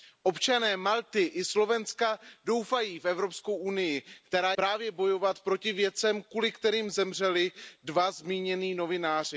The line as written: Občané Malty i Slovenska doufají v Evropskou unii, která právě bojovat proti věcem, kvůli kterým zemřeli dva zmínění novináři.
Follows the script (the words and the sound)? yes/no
yes